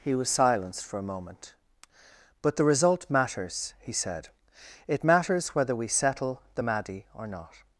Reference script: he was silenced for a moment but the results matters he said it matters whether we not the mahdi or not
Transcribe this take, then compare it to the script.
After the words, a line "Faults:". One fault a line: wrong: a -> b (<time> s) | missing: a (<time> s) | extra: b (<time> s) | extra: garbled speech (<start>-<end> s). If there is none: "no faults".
he was silenced for a moment but the result matters he said it matters whether we settle the mahdi or not
Faults:
wrong: results -> result (2.6 s)
wrong: not -> settle (5.9 s)